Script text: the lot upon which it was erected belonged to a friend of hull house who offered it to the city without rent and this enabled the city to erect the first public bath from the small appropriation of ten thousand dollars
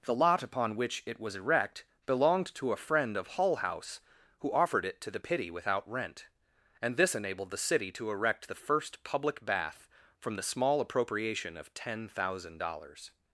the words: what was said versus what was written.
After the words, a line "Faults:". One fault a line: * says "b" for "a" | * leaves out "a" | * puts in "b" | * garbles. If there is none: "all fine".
the lot upon which it was erect belonged to a friend of hull house who offered it to the pity without rent and this enabled the city to erect the first public bath from the small appropriation of ten thousand dollars
Faults:
* says "erect" for "erected"
* says "pity" for "city"